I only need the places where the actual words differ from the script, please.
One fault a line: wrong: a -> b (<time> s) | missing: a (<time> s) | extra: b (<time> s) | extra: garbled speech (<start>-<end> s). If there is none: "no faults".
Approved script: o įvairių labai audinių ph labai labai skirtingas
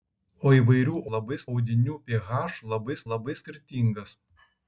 no faults